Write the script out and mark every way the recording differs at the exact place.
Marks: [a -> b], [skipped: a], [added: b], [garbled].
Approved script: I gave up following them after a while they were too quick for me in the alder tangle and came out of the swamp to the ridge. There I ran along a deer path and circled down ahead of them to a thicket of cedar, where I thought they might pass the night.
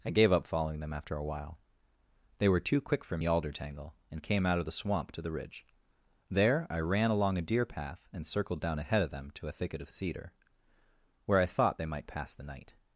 I gave up following them after a while they were too quick for [skipped: me in] the alder tangle and came out of the swamp to the ridge. There I ran along a deer path and circled down ahead of them to a thicket of cedar, where I thought they might pass the night.